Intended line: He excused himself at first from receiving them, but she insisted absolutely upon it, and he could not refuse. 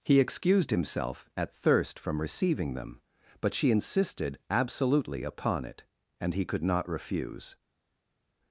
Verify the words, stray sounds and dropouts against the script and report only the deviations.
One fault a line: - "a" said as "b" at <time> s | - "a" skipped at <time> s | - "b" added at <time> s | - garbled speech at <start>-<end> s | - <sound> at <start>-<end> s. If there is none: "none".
- "first" said as "thirst" at 1.6 s